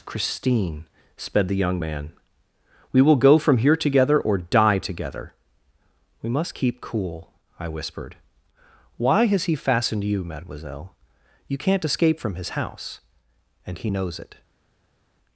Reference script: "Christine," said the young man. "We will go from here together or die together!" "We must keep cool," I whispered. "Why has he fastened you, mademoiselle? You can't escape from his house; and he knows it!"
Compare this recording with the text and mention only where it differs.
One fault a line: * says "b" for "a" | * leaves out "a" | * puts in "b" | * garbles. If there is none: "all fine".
* says "sped" for "said"